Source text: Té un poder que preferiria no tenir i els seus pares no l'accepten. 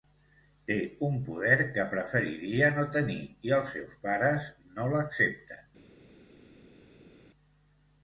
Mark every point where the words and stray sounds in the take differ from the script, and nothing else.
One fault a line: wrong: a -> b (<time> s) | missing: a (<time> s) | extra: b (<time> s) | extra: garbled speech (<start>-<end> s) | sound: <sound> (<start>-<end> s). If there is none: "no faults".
no faults